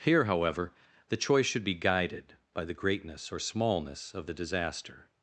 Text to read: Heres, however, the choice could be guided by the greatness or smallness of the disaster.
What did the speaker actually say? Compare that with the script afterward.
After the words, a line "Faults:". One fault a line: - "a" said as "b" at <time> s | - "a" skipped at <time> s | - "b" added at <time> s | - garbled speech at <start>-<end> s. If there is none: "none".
Here, however, the choice should be guided by the greatness or smallness of the disaster.
Faults:
- "Heres" said as "Here" at 0.0 s
- "could" said as "should" at 1.4 s